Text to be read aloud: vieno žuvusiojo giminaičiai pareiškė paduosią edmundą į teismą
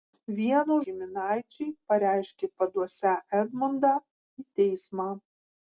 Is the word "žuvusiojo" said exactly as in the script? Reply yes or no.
no